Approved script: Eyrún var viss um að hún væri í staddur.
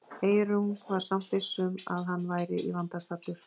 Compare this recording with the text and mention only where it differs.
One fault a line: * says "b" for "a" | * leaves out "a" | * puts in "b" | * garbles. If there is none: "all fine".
* puts in "samt"
* says "hann" for "hún"
* puts in "vanda"